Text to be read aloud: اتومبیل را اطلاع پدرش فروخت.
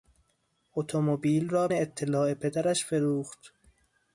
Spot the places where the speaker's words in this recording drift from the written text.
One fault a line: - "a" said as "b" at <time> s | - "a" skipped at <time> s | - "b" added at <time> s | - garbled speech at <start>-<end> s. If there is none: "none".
none